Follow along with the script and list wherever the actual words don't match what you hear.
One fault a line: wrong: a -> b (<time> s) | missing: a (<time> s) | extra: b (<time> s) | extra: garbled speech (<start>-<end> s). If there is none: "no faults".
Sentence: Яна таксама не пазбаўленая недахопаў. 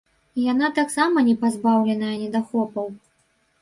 no faults